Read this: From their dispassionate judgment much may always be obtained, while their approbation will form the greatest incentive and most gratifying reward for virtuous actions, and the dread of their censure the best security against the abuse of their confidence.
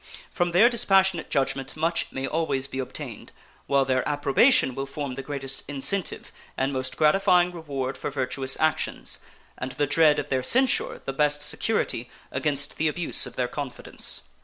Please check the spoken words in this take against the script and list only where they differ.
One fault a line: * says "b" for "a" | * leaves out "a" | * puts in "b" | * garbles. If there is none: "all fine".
all fine